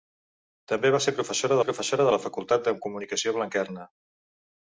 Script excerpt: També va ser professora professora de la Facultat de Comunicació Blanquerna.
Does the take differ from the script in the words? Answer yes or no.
no